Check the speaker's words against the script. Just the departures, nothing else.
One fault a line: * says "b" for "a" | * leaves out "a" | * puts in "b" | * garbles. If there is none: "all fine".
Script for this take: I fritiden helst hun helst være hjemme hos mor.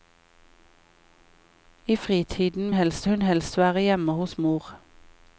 all fine